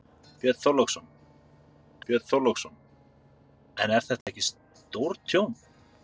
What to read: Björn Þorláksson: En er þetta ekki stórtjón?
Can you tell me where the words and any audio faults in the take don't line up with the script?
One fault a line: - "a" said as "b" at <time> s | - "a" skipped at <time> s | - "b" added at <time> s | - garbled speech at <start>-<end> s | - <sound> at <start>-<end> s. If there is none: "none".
- "björn Þorláksson" added at 2.1 s
- dropout at 4.2-4.3 s